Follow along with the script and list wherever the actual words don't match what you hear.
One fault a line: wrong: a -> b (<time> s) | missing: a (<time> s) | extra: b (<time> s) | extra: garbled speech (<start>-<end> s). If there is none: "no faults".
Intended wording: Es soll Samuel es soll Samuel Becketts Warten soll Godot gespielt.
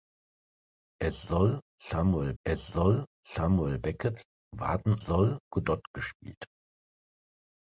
no faults